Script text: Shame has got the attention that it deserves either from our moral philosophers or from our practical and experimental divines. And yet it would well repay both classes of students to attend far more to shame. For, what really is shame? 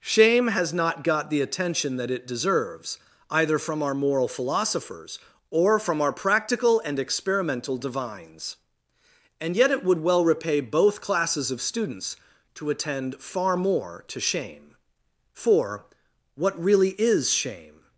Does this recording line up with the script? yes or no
no